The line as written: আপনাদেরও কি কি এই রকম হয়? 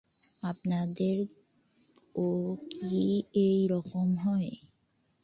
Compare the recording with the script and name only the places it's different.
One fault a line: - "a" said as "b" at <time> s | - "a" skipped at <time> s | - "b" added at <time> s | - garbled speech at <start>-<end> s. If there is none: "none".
- "কি" skipped at 3.0 s